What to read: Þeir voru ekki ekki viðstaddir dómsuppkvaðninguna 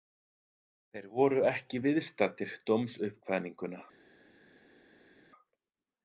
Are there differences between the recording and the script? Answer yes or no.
yes